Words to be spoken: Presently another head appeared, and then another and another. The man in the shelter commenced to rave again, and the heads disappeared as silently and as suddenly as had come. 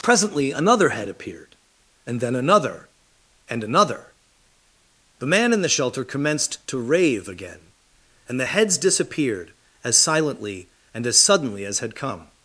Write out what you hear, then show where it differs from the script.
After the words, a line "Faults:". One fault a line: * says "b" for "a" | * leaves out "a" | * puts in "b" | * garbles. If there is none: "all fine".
Presently another head appeared, and then another and another. The man in the shelter commenced to rave again, and the heads disappeared as silently and as suddenly as had come.
Faults:
all fine